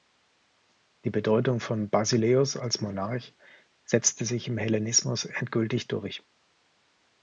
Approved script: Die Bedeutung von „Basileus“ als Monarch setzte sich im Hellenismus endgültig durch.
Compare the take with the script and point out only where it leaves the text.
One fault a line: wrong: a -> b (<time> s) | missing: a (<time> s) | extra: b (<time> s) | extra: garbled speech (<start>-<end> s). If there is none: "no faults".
no faults